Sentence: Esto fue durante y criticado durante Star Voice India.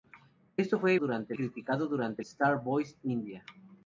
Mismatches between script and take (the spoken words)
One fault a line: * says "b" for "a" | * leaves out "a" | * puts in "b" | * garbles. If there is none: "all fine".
all fine